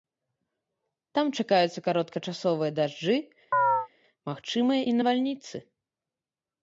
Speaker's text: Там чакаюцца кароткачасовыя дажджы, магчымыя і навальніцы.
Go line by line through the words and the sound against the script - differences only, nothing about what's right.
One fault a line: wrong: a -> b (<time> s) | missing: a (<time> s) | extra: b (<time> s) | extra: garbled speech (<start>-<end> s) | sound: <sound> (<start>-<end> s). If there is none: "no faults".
sound: chirp (3.5-3.9 s)